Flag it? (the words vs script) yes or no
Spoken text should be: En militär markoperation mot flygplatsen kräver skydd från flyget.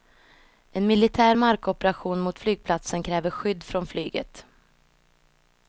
no